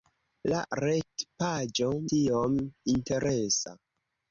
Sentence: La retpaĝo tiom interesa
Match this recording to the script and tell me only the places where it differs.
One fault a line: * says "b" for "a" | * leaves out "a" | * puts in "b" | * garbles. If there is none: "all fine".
all fine